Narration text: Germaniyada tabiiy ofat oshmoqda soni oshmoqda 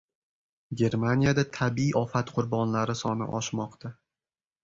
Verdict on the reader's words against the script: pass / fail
fail